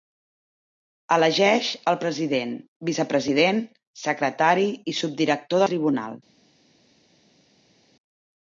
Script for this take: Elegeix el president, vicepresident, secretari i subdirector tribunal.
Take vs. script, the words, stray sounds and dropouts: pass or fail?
pass